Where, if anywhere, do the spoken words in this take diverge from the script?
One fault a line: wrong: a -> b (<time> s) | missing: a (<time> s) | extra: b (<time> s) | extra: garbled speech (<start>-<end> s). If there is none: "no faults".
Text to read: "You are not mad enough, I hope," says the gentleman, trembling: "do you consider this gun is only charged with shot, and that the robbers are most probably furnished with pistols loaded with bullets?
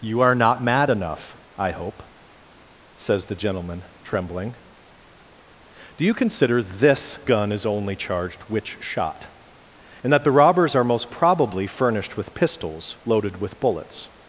wrong: with -> which (8.4 s)